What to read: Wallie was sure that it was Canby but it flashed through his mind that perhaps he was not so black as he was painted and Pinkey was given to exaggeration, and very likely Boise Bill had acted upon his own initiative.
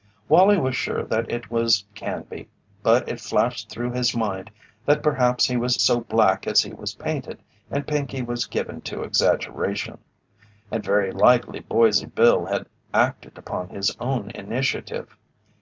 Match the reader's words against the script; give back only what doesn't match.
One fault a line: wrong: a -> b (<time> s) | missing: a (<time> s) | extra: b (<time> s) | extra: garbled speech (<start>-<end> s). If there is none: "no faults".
missing: not (5.8 s)